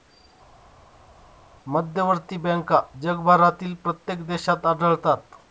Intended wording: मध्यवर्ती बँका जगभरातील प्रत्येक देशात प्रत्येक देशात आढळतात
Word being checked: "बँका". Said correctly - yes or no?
yes